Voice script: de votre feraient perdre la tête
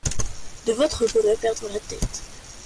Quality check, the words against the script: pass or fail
pass